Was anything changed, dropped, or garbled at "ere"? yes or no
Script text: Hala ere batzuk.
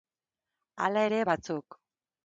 no